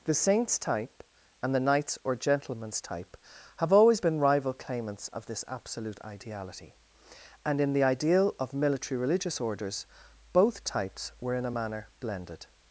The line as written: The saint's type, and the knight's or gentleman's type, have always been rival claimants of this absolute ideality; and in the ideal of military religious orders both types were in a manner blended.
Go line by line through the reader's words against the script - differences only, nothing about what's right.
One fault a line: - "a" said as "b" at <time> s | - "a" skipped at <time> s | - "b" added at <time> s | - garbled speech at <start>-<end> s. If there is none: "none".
none